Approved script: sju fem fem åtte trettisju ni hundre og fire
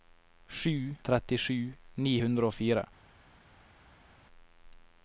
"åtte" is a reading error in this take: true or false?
true